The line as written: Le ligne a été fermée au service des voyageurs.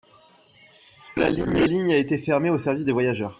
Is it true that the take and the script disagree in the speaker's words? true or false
false